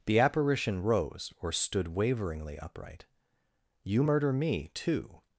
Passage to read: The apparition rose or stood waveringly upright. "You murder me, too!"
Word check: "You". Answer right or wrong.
right